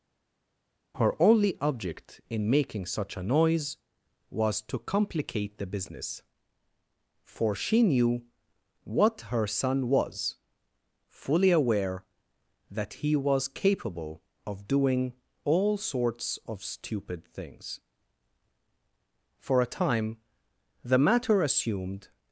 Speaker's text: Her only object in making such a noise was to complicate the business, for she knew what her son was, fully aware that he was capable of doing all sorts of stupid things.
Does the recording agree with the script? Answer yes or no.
no